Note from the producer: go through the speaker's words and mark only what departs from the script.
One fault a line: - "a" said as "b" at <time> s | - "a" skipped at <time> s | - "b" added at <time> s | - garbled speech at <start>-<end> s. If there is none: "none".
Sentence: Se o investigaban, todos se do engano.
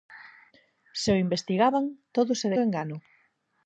none